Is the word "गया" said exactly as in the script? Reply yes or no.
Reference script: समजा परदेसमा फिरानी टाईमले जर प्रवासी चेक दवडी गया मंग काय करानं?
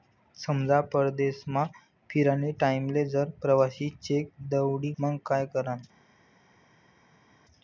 no